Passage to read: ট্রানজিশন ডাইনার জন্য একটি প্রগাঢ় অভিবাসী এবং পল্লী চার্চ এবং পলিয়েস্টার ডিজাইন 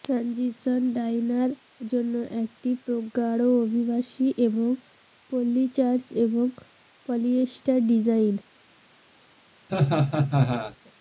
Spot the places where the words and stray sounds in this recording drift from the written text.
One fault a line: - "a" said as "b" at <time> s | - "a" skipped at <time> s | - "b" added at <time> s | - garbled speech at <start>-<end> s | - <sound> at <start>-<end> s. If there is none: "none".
- laugh at 9.7-10.8 s